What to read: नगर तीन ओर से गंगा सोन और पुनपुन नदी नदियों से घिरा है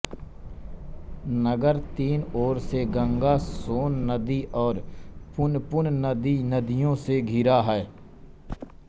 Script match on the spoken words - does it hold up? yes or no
no